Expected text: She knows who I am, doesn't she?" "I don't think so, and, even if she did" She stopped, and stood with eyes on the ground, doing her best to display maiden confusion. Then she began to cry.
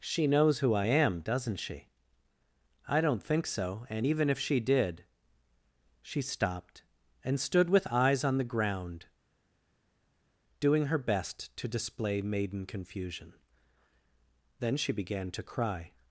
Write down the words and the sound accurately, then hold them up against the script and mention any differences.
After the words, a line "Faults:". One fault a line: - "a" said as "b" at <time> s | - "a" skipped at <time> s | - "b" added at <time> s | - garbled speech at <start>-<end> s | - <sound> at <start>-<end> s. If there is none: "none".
She knows who I am, doesn't she?" "I don't think so, and, even if she did" She stopped, and stood with eyes on the ground, doing her best to display maiden confusion. Then she began to cry.
Faults:
none